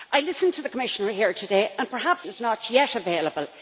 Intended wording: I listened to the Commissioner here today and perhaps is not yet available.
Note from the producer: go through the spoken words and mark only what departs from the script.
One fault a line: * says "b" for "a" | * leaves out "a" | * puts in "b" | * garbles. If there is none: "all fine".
all fine